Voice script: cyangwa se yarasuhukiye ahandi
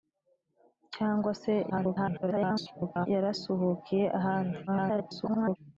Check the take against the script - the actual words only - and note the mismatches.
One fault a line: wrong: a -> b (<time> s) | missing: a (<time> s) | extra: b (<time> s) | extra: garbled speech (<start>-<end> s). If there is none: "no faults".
extra: garbled speech (1.7-3.1 s)
extra: garbled speech (4.7-5.6 s)